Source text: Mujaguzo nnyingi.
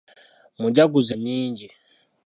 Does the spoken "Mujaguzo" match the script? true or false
true